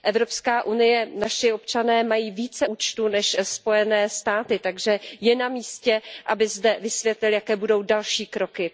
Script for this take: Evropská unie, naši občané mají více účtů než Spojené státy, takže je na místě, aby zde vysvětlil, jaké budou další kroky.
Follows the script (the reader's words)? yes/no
yes